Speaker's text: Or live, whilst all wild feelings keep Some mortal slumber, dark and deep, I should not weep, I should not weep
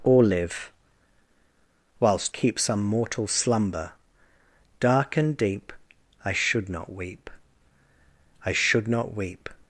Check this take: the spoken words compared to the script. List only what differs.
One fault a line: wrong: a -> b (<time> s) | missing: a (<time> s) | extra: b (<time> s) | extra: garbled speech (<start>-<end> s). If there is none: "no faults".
missing: all wild feelings (2.3 s)